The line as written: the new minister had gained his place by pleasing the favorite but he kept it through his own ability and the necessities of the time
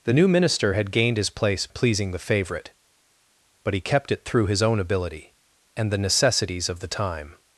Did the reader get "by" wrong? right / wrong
wrong